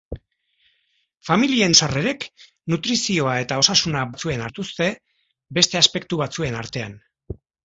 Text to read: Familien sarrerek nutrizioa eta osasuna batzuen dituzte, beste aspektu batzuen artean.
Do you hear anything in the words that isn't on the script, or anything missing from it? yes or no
no